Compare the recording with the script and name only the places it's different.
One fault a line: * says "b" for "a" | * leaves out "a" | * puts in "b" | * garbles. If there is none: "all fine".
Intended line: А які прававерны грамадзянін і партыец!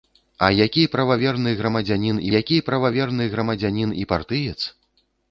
* puts in "які прававерны грамадзянін"